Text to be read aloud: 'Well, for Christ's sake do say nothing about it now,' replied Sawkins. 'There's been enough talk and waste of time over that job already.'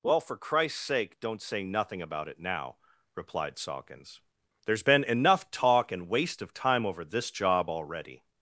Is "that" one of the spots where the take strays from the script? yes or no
yes